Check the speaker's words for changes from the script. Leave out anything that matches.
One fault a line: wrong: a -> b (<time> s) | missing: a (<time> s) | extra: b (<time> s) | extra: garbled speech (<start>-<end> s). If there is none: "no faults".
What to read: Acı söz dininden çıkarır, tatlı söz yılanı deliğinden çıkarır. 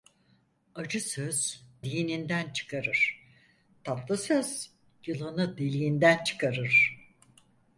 no faults